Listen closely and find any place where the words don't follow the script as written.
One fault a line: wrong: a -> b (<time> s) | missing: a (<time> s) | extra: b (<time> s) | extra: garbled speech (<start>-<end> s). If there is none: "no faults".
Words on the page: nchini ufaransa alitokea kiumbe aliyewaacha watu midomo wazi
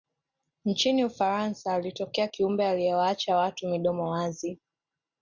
no faults